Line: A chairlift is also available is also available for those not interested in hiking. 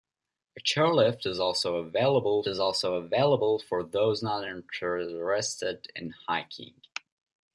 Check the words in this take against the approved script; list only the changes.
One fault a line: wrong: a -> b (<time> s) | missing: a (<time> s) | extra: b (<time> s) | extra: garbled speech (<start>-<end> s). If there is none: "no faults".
no faults